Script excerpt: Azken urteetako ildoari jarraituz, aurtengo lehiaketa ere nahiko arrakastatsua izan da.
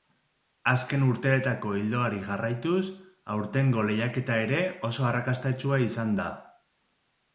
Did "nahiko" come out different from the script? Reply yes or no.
yes